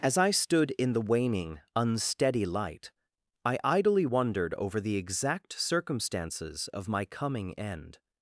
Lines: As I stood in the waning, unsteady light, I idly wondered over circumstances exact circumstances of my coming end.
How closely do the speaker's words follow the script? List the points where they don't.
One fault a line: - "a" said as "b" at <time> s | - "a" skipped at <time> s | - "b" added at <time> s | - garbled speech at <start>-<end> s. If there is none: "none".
- "circumstances" said as "the" at 4.8 s